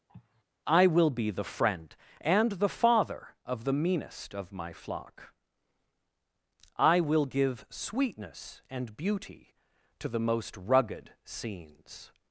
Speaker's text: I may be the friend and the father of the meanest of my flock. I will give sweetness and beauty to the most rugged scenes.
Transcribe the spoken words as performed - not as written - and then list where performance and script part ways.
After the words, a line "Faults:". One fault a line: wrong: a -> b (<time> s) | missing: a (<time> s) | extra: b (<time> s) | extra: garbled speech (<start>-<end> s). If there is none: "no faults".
I will be the friend and the father of the meanest of my flock. I will give sweetness and beauty to the most rugged scenes.
Faults:
wrong: may -> will (0.9 s)